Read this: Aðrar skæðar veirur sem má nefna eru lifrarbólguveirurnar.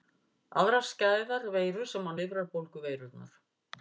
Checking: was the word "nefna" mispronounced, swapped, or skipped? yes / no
yes